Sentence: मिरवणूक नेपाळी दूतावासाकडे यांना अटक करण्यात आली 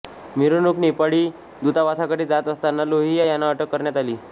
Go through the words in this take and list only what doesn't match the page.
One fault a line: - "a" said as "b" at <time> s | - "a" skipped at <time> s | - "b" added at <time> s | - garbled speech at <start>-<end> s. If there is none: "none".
- "जात असताना लोहिया" added at 2.2 s